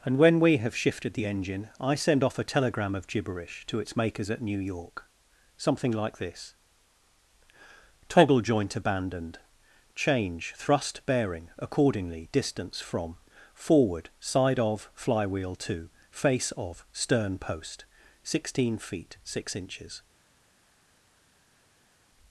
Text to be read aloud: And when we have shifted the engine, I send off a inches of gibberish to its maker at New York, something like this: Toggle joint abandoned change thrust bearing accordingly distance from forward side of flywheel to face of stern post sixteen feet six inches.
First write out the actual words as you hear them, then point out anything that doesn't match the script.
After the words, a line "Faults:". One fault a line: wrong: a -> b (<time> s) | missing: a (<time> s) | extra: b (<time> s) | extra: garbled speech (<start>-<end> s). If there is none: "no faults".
And when we have shifted the engine, I send off a telegram of gibberish to its makers at New York, something like this: Toggle joint abandoned change thrust bearing accordingly distance from forward side of flywheel to face of stern post sixteen feet six inches.
Faults:
wrong: inches -> telegram (2.4 s)
wrong: maker -> makers (4.0 s)